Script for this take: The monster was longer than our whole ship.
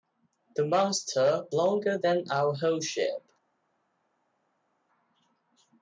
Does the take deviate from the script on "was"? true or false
true